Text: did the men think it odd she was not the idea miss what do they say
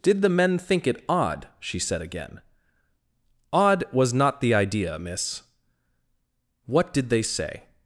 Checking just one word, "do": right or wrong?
wrong